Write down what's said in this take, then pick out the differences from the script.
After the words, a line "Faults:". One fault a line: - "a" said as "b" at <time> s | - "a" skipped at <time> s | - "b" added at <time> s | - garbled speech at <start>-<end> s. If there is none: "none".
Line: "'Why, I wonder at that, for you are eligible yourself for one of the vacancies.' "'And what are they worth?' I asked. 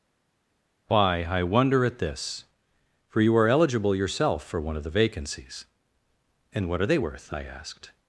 "'Why, I wonder at this, for you are eligible yourself for one of the vacancies.' "'And what are they worth?' I asked.
Faults:
- "that" said as "this" at 2.0 s